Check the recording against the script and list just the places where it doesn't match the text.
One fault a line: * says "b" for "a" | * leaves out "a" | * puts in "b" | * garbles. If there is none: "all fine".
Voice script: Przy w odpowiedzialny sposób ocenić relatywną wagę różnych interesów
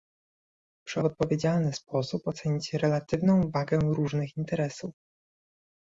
all fine